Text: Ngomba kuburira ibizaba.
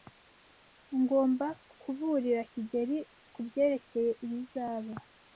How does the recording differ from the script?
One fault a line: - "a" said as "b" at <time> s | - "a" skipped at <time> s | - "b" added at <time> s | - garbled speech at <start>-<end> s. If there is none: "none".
- "kigeli kubyerekeye" added at 2.5 s